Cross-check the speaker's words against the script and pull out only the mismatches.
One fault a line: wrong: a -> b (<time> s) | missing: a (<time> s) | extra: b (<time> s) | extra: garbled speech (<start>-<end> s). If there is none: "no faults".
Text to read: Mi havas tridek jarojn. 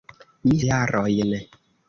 missing: havas tridek (0.6 s)